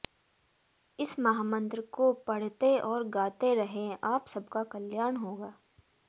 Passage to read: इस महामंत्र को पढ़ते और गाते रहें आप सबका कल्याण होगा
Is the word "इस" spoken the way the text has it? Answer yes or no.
yes